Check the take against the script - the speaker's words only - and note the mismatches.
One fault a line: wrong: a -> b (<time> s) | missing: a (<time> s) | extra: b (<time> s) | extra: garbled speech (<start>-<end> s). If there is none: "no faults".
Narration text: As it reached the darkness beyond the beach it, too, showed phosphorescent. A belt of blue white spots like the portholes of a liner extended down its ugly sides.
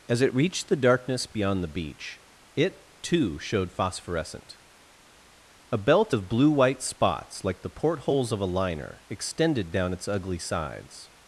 no faults